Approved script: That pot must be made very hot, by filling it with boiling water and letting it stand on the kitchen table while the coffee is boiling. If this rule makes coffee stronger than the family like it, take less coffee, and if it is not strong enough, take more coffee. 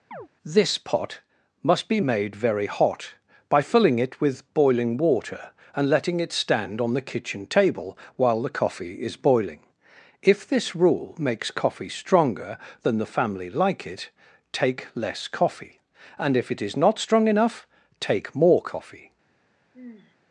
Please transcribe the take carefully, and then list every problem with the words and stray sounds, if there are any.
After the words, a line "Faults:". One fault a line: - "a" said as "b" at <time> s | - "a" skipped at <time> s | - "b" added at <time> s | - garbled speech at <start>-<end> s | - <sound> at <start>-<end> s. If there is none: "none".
This pot must be made very hot, by filling it with boiling water and letting it stand on the kitchen table while the coffee is boiling. If this rule makes coffee stronger than the family like it, take less coffee, and if it is not strong enough, take more coffee.
Faults:
- chirp at 0.1-0.3 s
- "That" said as "This" at 0.4 s
- sigh at 19.7-20.2 s